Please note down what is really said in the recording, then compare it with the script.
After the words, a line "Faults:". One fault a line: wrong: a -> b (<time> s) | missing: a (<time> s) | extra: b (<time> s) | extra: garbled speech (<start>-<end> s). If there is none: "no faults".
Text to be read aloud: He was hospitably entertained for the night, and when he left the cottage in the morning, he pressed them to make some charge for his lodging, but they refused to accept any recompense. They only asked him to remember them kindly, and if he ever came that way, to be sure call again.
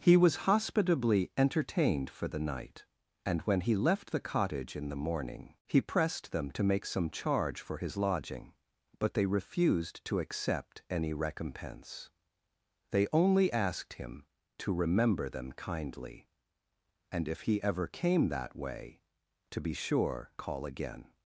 He was hospitably entertained for the night, and when he left the cottage in the morning, he pressed them to make some charge for his lodging, but they refused to accept any recompense. They only asked him to remember them kindly, and if he ever came that way, to be sure call again.
Faults:
no faults